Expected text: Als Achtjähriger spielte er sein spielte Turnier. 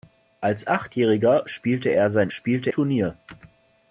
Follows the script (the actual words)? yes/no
yes